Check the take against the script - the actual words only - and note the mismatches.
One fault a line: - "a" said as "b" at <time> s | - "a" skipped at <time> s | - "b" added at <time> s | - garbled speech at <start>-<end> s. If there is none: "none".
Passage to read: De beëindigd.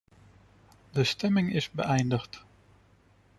- "stemming is" added at 1.0 s